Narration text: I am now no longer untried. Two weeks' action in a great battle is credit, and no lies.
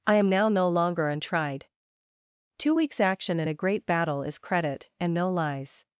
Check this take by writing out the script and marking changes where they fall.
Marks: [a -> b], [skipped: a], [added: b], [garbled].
I am now no longer untried. Two weeks' action in a great battle is credit, and no lies.